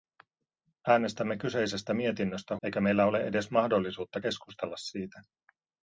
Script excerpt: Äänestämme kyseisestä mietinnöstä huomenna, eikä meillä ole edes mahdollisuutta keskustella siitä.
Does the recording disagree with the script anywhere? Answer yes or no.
yes